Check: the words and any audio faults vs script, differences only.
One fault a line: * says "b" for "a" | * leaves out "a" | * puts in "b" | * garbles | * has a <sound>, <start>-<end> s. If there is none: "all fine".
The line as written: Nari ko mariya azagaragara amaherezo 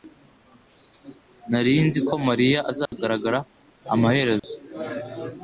* puts in "nzi"
* has a dropout, 2.9-2.9 s
* has a dropout, 4.4-4.4 s